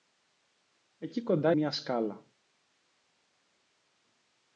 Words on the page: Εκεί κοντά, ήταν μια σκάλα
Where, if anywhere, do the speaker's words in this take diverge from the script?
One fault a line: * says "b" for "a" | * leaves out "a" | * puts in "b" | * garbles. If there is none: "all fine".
* leaves out "ήταν"